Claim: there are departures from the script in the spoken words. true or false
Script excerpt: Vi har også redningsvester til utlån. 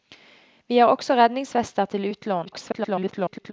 true